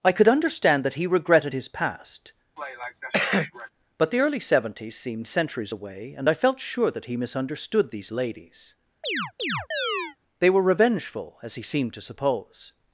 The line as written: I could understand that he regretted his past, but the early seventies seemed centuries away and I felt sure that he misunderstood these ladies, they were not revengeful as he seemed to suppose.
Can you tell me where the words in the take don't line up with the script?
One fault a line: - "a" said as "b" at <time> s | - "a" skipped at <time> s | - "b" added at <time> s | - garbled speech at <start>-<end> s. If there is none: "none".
- "not" skipped at 10.6 s